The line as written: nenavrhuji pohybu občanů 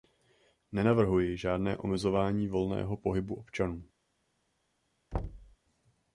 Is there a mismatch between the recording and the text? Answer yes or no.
yes